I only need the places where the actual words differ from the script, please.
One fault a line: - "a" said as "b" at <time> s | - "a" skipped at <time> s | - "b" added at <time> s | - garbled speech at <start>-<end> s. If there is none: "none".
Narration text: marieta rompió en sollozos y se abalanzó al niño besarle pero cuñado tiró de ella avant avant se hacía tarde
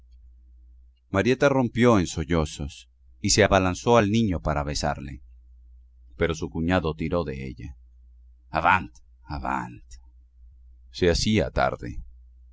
- "para" added at 4.4 s
- "su" added at 6.4 s